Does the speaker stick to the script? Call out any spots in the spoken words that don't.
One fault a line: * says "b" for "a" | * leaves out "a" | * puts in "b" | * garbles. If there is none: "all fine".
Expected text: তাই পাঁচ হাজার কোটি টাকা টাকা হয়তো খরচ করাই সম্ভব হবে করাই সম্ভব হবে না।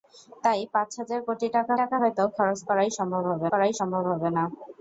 all fine